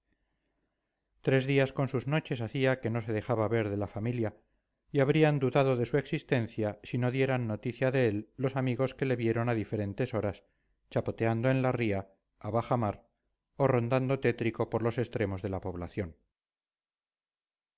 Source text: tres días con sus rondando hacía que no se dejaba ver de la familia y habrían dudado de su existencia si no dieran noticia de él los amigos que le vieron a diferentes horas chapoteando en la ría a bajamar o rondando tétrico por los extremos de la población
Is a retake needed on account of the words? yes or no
yes